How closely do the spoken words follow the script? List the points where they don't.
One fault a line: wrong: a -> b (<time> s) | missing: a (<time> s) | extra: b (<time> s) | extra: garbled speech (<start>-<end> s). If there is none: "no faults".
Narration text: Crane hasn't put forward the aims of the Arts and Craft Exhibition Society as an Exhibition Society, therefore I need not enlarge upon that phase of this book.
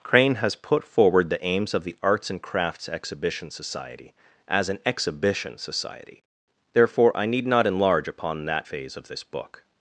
wrong: hasn't -> has (0.3 s)
wrong: Craft -> Crafts (2.4 s)